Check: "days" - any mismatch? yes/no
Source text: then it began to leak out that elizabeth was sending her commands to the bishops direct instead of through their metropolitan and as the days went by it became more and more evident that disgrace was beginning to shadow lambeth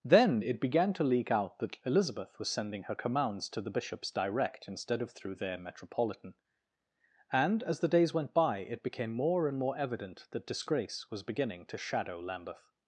no